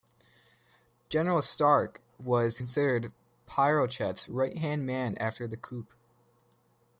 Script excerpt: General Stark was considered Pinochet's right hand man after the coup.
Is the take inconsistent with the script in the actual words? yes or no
no